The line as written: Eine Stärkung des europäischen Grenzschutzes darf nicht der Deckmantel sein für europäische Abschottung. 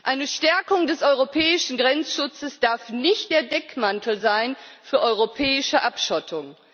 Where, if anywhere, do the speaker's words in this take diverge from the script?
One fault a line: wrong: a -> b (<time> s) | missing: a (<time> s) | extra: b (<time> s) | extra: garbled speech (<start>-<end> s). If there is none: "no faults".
no faults